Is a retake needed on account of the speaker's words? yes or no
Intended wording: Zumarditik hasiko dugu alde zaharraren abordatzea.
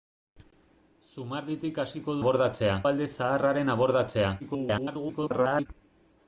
yes